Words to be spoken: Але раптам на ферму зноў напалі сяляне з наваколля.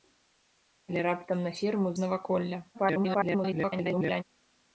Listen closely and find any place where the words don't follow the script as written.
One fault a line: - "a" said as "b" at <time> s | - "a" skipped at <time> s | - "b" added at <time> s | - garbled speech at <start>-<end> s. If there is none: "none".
- "зноў напалі сяляне" skipped at 1.9 s
- garbled speech at 2.7-4.2 s